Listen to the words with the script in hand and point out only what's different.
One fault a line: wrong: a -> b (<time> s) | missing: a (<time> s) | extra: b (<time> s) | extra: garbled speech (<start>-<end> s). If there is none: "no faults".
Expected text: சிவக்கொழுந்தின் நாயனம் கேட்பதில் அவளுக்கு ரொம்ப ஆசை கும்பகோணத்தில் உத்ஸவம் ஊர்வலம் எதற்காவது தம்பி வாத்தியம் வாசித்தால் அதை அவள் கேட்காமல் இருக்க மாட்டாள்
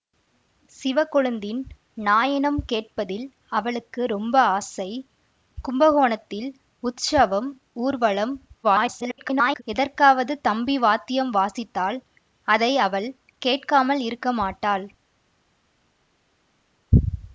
extra: garbled speech (8.6-9.6 s)